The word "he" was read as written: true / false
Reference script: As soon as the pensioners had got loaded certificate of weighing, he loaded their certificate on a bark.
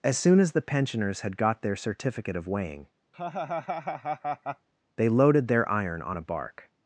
false